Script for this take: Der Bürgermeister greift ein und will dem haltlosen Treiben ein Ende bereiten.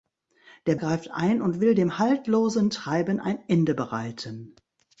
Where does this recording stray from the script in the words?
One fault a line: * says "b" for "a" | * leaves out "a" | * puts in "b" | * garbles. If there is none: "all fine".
* leaves out "Bürgermeister"